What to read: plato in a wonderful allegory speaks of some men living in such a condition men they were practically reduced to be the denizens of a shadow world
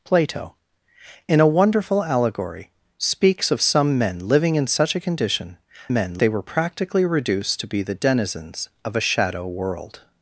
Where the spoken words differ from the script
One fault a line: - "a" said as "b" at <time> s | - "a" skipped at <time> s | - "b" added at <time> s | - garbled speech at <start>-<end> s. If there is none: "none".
none